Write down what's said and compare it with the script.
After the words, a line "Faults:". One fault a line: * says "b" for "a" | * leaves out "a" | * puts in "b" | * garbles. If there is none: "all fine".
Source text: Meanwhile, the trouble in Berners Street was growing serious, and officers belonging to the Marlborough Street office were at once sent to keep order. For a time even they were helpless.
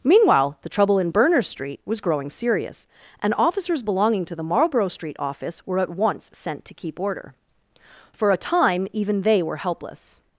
Meanwhile, the trouble in Berners Street was growing serious, and officers belonging to the Marlborough Street office were at once sent to keep order. For a time even they were helpless.
Faults:
all fine